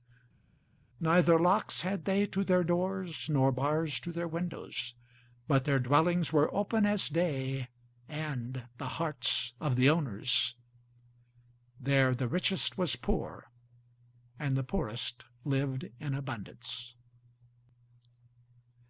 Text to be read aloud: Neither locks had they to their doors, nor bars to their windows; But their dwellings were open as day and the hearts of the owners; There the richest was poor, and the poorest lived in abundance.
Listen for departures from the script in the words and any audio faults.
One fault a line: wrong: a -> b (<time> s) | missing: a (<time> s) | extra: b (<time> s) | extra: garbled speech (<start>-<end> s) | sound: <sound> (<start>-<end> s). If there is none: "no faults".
no faults